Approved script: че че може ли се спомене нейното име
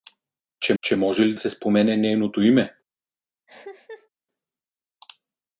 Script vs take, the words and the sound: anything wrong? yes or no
yes